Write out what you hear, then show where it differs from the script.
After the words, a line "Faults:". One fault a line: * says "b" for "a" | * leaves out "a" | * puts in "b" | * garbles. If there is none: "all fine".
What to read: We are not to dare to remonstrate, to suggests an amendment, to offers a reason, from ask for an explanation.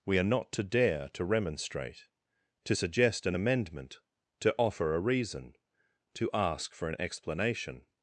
We are not to dare to remonstrate, to suggest an amendment, to offer a reason, to ask for an explanation.
Faults:
* says "suggest" for "suggests"
* says "offer" for "offers"
* says "to" for "from"